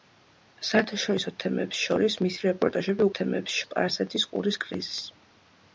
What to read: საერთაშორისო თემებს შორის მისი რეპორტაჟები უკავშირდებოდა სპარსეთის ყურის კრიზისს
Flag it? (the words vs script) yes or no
yes